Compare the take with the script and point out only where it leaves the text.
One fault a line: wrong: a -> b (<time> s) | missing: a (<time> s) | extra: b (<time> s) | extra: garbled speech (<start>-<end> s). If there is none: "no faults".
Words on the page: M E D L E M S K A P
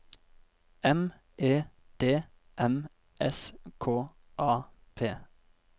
missing: L E (2.2 s)